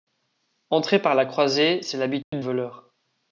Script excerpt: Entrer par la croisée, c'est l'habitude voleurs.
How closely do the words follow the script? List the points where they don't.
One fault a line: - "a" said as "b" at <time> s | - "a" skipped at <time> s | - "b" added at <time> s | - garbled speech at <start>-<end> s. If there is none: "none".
none